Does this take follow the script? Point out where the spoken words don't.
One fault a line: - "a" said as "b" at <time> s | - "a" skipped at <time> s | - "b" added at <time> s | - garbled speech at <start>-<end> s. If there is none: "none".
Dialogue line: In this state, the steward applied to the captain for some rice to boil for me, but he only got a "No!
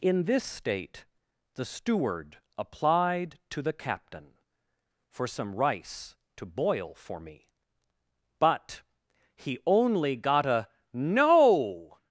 none